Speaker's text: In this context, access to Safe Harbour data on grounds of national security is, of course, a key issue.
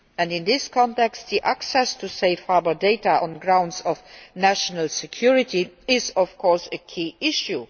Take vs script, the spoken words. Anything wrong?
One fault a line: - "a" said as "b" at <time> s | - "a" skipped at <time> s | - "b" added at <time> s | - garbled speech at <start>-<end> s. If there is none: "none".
none